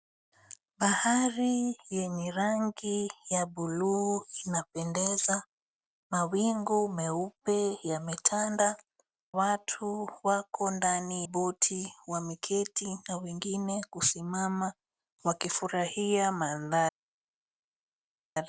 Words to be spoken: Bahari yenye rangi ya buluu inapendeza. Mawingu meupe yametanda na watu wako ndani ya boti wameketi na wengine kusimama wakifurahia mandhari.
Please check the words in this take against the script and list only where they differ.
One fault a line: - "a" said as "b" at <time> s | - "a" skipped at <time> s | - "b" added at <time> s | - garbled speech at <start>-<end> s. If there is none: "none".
- "na" skipped at 8.8 s
- "ya" skipped at 11.3 s